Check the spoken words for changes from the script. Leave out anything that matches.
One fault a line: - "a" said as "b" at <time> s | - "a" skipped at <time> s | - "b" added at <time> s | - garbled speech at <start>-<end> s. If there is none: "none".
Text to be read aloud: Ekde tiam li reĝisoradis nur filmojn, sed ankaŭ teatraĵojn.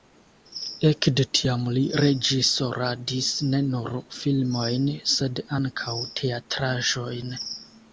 - "ne" added at 3.5 s